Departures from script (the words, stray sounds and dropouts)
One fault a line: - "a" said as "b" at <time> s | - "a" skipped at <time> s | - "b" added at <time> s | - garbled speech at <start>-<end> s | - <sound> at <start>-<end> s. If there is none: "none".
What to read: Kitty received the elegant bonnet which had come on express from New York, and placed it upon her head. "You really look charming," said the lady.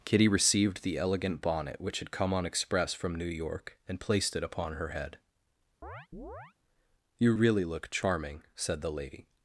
- chirp at 5.8-6.5 s